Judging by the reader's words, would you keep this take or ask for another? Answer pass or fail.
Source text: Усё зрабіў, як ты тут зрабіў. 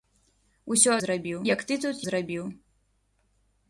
pass